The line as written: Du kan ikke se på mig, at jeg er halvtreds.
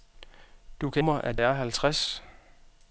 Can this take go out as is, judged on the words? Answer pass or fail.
fail